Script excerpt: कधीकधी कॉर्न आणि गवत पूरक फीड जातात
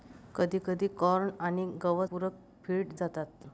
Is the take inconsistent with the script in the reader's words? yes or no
no